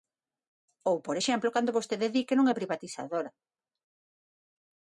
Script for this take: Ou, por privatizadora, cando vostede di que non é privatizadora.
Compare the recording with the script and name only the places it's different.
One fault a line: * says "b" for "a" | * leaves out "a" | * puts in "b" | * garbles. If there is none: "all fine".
* says "exemplo" for "privatizadora"